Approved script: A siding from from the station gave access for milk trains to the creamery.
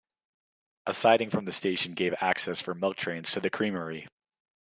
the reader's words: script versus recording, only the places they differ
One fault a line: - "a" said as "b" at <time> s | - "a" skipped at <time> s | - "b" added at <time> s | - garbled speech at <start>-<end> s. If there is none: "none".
- "from" skipped at 1.4 s